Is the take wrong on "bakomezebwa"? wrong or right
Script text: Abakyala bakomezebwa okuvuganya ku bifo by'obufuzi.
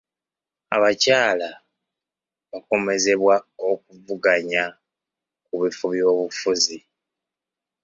right